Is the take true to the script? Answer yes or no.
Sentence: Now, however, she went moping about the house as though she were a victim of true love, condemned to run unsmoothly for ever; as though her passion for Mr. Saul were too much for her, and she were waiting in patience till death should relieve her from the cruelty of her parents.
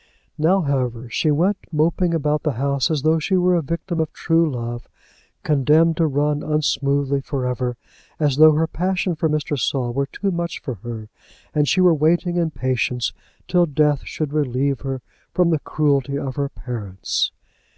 yes